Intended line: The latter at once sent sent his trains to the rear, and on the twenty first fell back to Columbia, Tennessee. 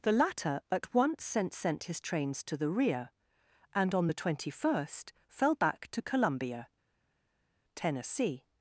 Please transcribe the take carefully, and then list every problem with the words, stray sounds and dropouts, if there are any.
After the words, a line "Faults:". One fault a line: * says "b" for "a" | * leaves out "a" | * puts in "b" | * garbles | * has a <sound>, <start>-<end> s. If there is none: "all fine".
The latter at once sent sent his trains to the rear, and on the twenty first fell back to Columbia, Tennessee.
Faults:
all fine